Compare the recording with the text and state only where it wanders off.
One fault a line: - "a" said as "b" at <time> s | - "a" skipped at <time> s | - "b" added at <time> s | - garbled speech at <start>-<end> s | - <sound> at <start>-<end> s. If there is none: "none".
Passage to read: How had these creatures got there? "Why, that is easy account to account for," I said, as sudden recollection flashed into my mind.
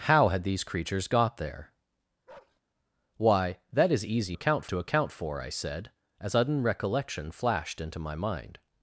- bark at 2.3-2.6 s